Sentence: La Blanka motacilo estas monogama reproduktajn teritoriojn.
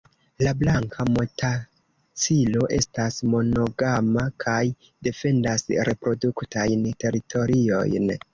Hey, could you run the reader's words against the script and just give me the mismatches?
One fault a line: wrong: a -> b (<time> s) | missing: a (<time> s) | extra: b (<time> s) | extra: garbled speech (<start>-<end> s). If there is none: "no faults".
extra: kaj defendas (4.5 s)